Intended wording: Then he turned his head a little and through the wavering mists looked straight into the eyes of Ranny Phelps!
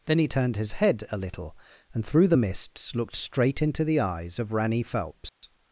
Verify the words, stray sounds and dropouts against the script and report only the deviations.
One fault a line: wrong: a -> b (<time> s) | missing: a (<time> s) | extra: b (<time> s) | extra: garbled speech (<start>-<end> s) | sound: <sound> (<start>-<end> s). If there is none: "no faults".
missing: wavering (2.4 s)
sound: dropout (5.3-5.4 s)